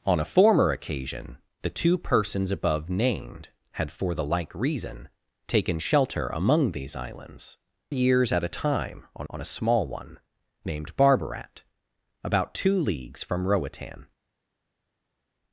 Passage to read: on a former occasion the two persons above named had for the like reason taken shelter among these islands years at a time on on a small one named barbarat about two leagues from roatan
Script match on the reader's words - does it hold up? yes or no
yes